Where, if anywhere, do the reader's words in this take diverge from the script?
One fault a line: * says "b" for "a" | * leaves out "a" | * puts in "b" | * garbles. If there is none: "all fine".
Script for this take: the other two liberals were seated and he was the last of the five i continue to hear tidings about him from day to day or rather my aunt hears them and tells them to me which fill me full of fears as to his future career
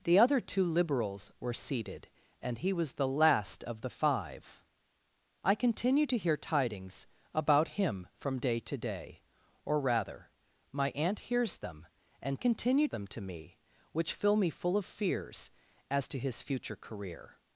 * says "continue" for "tells"